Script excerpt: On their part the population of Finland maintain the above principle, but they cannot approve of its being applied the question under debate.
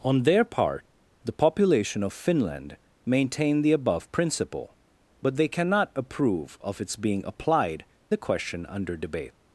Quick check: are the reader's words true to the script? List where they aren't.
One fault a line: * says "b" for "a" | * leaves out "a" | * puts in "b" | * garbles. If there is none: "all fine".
all fine